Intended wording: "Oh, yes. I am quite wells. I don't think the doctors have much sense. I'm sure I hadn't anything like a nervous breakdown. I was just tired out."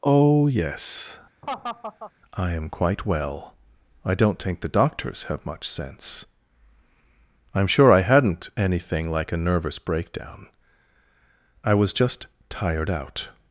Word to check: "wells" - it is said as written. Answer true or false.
false